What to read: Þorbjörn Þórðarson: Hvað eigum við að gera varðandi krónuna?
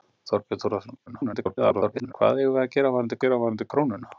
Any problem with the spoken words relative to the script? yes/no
yes